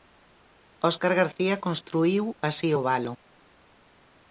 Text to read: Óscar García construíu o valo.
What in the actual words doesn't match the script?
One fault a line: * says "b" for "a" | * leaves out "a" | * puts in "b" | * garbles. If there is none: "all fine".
* puts in "así"